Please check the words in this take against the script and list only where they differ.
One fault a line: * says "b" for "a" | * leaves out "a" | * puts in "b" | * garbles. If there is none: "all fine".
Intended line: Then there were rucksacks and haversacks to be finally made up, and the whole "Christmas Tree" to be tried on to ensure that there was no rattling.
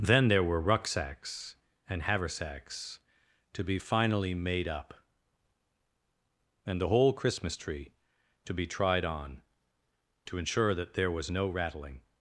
all fine